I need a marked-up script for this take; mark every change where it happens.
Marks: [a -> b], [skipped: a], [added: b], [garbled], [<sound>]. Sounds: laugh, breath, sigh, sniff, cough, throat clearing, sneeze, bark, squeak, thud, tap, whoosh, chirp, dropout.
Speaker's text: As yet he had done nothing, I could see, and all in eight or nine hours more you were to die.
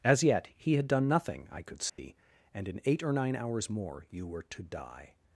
As yet he had done nothing, I could see, [dropout] and [skipped: all] in eight or nine hours more you were to die.